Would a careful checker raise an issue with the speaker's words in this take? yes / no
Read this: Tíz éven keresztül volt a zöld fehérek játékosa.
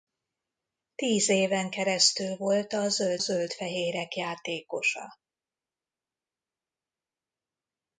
yes